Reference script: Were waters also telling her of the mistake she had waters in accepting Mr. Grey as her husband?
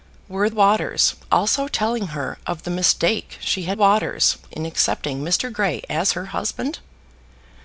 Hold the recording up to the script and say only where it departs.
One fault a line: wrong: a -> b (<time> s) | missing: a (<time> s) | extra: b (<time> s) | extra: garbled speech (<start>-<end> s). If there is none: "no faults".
no faults